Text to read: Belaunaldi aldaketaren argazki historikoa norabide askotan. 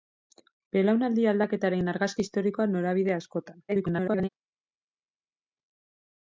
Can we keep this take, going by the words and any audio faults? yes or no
no